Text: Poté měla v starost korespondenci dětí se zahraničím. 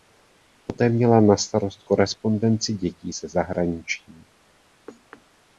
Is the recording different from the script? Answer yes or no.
yes